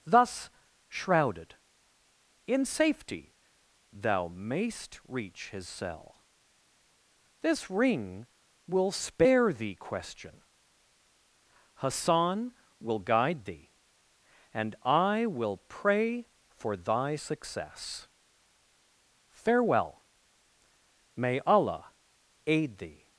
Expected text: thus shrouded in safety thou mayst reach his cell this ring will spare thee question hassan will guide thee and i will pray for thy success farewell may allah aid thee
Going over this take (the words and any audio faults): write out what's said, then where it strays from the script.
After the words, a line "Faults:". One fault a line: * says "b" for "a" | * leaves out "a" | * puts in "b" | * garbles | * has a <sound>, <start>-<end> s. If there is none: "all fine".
thus shrouded in safety thou mayst reach his cell this ring will spare thee question hassan will guide thee and i will pray for thy success farewell may allah aid thee
Faults:
all fine